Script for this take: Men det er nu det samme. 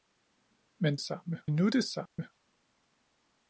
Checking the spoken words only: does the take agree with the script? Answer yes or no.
no